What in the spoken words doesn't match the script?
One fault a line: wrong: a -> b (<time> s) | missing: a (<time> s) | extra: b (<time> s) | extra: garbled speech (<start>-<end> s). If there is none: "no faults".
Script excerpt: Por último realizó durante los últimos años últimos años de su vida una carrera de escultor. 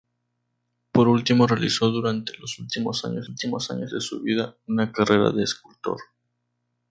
no faults